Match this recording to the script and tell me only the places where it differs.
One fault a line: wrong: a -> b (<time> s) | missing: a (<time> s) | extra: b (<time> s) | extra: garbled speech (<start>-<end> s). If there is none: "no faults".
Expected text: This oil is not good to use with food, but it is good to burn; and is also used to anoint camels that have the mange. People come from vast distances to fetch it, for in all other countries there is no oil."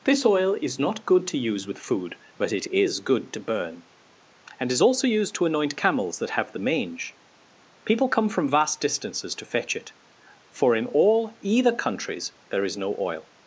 wrong: other -> either (11.4 s)